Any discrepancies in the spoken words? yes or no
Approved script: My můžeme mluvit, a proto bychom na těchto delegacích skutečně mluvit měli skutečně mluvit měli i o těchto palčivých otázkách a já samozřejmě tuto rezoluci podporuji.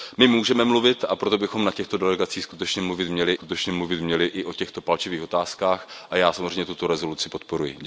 no